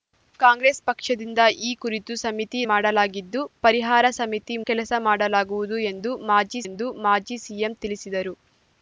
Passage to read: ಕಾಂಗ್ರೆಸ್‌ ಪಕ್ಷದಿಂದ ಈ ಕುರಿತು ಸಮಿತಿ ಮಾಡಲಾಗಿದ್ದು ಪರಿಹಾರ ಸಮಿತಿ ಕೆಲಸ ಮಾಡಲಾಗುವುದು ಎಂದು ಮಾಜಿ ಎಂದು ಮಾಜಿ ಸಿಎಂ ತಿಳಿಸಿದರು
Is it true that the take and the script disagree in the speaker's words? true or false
false